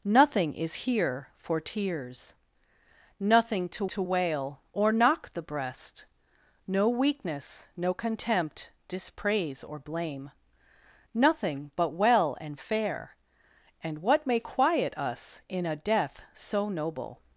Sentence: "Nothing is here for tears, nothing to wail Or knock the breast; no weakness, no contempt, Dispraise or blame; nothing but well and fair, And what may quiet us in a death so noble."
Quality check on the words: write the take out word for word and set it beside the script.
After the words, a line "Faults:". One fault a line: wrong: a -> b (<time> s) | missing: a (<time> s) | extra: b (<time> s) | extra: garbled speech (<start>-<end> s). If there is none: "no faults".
"Nothing is here for tears, nothing to to wail Or knock the breast; no weakness, no contempt, Dispraise or blame; nothing but well and fair, And what may quiet us in a death so noble."
Faults:
extra: to (3.9 s)